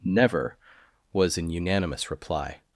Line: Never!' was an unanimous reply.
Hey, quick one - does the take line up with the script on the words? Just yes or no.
yes